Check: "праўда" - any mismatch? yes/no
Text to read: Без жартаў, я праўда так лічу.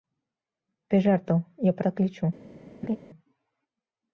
yes